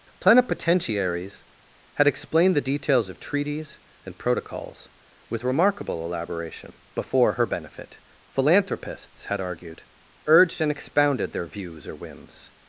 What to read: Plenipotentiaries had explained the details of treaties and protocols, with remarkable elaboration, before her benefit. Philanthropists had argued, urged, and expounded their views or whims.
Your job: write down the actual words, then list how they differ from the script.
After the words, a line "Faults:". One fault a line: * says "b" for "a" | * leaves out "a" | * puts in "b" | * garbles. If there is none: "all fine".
Plenipotentiaries had explained the details of treaties and protocols, with remarkable elaboration, before her benefit. Philanthropists had argued, urged, and expounded their views or whims.
Faults:
all fine